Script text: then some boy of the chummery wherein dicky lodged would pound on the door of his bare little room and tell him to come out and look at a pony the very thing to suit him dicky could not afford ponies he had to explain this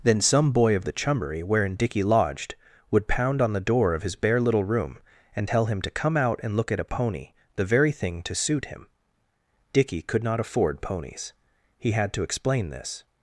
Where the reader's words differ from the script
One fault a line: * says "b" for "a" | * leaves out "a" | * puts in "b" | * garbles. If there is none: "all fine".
all fine